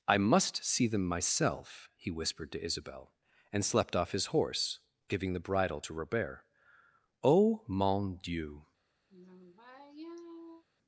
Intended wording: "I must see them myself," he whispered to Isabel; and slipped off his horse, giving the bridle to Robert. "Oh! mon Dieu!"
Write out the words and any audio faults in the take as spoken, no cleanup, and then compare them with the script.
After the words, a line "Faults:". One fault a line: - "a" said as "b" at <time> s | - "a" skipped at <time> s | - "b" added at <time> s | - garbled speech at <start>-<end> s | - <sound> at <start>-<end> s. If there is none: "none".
"I must see them myself," he whispered to Isabel; and slept off his horse, giving the bridle to Robert. "Oh! mon Dieu!"
Faults:
- "slipped" said as "slept" at 3.6 s
- sigh at 9.1-10.6 s